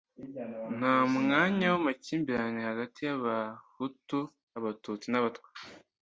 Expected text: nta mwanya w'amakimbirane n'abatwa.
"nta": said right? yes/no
yes